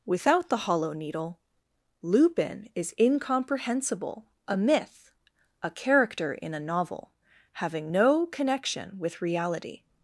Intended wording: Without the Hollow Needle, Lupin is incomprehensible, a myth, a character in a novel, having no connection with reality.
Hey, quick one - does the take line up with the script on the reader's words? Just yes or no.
yes